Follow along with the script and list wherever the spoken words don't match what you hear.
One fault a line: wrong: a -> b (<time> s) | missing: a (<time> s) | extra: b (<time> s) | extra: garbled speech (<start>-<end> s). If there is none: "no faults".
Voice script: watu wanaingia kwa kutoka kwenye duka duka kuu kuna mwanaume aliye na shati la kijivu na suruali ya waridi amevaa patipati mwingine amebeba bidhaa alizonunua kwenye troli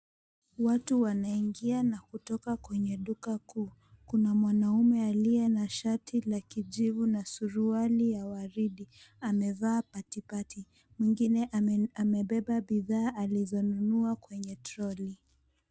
wrong: kwa -> na (1.8 s)
missing: duka (3.4 s)